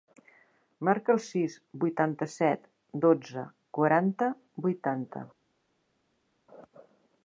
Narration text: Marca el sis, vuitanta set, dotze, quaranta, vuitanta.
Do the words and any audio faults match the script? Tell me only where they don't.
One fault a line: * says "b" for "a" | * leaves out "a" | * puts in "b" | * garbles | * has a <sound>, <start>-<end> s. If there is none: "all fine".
all fine